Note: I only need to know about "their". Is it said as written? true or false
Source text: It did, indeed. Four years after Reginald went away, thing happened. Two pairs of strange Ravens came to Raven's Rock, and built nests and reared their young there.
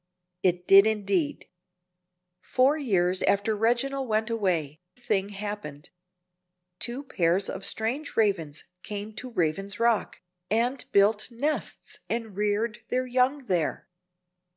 true